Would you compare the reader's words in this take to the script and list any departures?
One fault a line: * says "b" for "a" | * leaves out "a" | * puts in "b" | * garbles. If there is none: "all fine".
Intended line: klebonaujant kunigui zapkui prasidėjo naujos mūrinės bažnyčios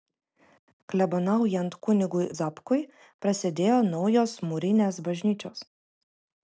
all fine